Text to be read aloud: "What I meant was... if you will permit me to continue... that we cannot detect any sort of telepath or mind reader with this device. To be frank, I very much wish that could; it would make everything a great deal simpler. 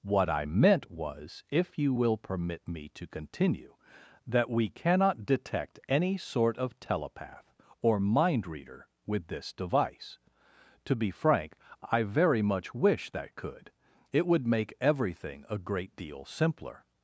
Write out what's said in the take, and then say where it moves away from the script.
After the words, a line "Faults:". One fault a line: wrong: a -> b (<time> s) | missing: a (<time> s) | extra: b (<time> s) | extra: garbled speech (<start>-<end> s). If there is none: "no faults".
"What I meant was... if you will permit me to continue... that we cannot detect any sort of telepath or mind reader with this device. To be frank, I very much wish that could; it would make everything a great deal simpler.
Faults:
no faults